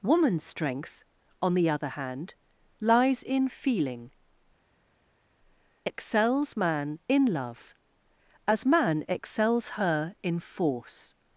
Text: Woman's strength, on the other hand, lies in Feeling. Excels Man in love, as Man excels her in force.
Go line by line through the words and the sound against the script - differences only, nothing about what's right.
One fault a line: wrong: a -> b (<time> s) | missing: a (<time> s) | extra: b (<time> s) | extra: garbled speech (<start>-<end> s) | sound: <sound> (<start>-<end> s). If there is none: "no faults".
no faults